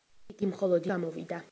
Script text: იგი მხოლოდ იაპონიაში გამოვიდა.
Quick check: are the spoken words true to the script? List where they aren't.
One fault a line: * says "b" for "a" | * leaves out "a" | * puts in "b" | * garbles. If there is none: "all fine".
* leaves out "იაპონიაში"